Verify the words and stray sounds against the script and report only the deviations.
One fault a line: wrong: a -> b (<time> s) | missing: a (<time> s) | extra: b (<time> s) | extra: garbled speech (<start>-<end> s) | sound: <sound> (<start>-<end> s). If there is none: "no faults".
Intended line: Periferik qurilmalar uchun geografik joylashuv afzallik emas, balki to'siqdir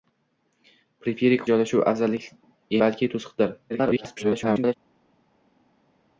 missing: qurilmalar uchun geografik (1.4 s)
missing: emas (2.3 s)
extra: garbled speech (3.7-4.7 s)